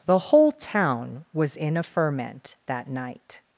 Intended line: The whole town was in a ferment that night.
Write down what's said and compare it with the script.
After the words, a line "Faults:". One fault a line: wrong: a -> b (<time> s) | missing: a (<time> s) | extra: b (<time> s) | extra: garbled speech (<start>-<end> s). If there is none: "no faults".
The whole town was in a ferment that night.
Faults:
no faults